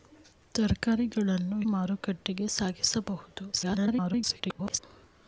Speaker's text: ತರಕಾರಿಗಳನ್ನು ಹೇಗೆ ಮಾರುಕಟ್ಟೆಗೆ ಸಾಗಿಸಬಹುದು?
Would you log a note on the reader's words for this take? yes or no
yes